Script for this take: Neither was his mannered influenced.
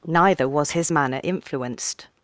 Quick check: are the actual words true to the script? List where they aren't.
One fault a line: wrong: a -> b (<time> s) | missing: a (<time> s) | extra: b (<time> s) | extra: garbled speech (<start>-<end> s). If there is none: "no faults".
wrong: mannered -> manner (0.9 s)